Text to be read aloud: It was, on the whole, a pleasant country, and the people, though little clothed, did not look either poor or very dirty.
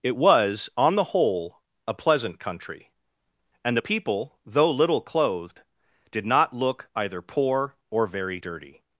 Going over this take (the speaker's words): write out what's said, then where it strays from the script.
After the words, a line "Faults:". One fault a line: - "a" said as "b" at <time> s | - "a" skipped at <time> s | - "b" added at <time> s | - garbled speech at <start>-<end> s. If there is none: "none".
It was, on the whole, a pleasant country, and the people, though little clothed, did not look either poor or very dirty.
Faults:
none